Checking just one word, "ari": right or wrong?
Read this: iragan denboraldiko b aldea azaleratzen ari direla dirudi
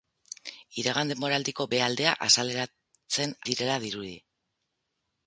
wrong